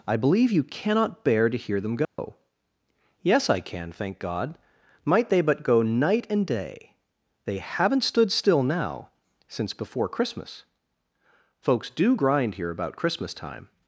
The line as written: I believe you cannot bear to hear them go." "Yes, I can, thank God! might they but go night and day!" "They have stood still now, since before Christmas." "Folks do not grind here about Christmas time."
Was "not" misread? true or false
true